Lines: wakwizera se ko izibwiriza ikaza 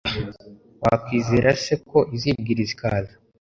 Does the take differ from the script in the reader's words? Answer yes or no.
no